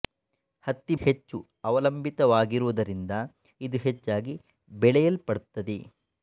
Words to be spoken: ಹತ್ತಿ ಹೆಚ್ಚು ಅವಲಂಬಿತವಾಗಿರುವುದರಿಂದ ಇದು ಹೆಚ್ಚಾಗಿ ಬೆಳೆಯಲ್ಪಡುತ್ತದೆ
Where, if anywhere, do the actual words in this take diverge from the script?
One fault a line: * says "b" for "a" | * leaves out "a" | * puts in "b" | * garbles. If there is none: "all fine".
all fine